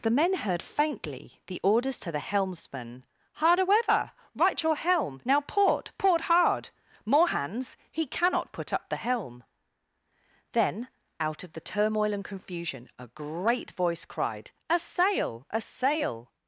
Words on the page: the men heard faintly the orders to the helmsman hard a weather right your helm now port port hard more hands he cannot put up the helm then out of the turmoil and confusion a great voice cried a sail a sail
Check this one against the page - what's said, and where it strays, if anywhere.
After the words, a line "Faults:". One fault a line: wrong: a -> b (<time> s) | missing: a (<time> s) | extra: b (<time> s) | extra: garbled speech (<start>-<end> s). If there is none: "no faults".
the men heard faintly the orders to the helmsman hard a weather right your helm now port port hard more hands he cannot put up the helm then out of the turmoil and confusion a great voice cried a sail a sail
Faults:
no faults